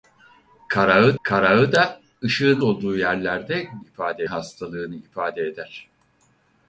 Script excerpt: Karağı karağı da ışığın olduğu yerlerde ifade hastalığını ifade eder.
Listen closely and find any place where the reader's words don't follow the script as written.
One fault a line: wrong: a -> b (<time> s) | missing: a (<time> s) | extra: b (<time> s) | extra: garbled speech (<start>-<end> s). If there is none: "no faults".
no faults